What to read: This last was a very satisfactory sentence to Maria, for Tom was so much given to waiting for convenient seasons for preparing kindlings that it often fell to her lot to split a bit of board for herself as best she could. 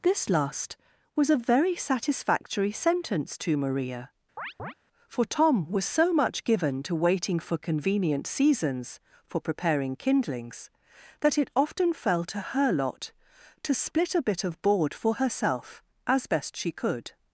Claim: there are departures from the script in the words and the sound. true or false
true